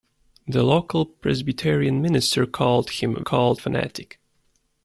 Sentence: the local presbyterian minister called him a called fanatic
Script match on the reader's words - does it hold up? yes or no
yes